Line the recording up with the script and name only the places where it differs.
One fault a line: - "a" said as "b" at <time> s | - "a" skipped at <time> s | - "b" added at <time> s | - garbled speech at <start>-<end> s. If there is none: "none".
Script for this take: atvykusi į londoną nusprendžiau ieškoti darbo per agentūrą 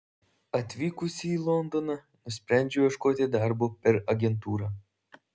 none